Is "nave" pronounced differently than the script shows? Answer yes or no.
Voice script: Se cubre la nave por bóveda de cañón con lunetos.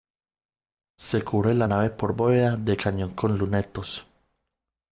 no